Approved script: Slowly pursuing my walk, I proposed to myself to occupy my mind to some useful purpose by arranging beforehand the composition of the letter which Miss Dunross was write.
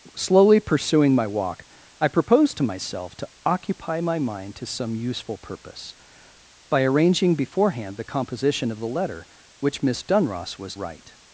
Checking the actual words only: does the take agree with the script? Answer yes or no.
yes